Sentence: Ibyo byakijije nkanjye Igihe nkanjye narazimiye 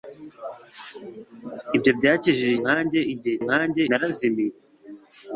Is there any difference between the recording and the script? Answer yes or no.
no